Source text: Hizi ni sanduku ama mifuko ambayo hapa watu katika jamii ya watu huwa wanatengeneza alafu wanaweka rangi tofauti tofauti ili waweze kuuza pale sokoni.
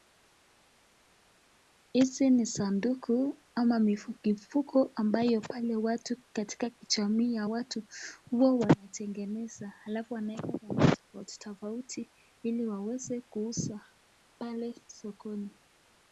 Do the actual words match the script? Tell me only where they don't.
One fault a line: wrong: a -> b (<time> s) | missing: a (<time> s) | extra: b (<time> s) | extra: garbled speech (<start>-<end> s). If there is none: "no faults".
wrong: hapa -> pale (5.4 s)